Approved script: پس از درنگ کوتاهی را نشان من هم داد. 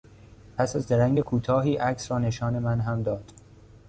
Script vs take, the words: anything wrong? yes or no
yes